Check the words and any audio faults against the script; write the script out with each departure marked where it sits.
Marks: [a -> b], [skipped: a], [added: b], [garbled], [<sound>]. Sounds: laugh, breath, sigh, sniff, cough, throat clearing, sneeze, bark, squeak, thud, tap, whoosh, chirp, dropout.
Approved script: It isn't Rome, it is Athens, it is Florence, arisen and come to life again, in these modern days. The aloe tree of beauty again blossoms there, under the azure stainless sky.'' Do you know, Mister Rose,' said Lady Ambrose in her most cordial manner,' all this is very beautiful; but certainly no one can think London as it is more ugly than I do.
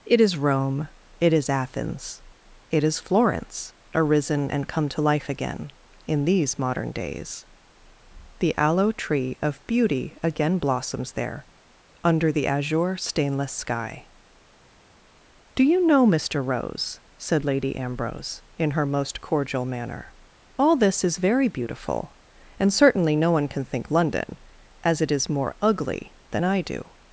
It [isn't -> is] Rome, it is Athens, it is Florence, arisen and come to life again, in these modern days. The aloe tree of beauty again blossoms there, under the azure stainless sky.'' Do you know, Mister Rose,' said Lady Ambrose in her most cordial manner,' all this is very beautiful; [but -> and] certainly no one can think London as it is more ugly than I do.